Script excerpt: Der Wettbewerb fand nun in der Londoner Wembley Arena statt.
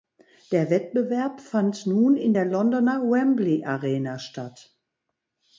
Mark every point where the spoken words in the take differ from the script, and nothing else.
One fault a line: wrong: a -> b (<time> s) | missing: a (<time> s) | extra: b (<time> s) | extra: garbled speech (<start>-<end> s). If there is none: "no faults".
no faults